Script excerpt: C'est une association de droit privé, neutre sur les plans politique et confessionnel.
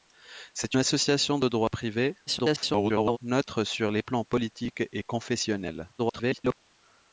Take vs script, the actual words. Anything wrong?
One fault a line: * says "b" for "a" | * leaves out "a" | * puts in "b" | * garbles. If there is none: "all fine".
* leaves out "une"
* garbles
* garbles